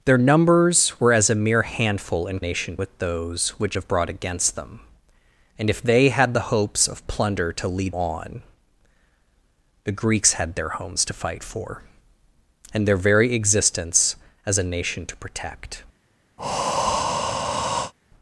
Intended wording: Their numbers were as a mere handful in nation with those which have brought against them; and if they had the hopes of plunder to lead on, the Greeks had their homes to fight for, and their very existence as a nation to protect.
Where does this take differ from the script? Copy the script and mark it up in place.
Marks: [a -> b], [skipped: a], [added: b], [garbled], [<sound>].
Their numbers were as a mere handful in nation with those which have brought against them; and if they had the hopes of plunder to lead on, the Greeks had their homes to fight for, and their very existence as a nation to protect. [breath]